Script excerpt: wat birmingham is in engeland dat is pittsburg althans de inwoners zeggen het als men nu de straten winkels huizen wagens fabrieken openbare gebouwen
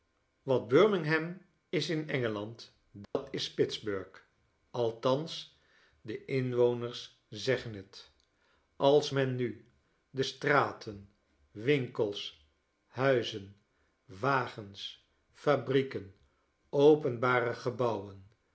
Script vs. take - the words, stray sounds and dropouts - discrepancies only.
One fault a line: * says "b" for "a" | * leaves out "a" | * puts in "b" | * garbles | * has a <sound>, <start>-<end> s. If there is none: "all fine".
* has a dropout, 3.0-3.2 s